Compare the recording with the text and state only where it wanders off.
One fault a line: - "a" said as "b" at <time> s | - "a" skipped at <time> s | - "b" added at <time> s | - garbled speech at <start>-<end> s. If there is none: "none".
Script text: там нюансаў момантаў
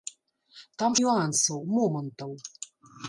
none